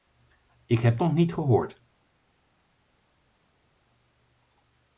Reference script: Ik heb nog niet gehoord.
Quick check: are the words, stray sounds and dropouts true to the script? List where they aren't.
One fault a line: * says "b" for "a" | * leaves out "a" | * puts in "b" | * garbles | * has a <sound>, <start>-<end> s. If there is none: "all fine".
all fine